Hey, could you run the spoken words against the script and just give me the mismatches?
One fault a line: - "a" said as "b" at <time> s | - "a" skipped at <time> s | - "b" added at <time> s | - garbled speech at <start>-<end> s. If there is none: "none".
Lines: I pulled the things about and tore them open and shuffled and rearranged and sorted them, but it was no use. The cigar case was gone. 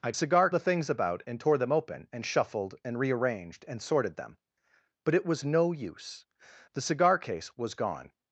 - "pulled" said as "cigar" at 0.1 s